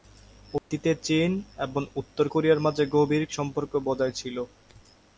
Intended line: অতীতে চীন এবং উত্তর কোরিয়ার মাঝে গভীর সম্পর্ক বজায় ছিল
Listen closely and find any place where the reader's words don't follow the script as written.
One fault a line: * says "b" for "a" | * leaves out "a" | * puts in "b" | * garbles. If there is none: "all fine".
all fine